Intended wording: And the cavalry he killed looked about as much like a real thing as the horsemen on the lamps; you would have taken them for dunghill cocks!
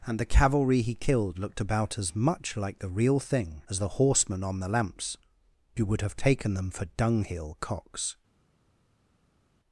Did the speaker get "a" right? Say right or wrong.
wrong